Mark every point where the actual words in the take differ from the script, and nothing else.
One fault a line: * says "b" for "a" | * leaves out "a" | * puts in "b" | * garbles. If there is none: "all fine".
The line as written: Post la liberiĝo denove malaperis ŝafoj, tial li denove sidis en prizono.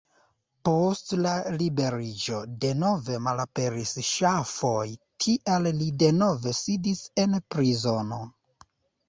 all fine